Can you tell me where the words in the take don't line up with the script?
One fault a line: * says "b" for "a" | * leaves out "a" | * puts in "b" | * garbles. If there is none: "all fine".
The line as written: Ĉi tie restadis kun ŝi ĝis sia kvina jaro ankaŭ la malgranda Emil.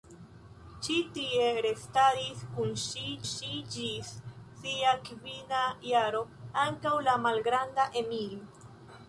* puts in "ŝi"